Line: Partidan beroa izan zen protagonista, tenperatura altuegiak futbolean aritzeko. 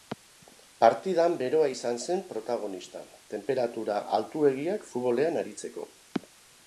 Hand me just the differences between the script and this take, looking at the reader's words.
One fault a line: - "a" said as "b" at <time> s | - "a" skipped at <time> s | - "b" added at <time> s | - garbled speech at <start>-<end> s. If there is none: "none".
none